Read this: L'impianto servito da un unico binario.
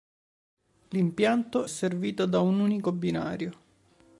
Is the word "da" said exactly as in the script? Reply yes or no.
yes